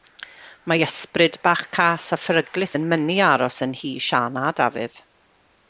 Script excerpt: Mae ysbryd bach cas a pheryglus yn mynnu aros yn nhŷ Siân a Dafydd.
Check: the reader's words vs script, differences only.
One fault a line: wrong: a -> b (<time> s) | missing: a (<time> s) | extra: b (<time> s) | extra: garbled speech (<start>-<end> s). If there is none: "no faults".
no faults